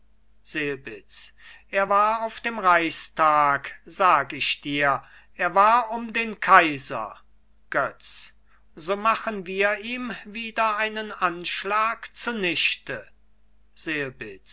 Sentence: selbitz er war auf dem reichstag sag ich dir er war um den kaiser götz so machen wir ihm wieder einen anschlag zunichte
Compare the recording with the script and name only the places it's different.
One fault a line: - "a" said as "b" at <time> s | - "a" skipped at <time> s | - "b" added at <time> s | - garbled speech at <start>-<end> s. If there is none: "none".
none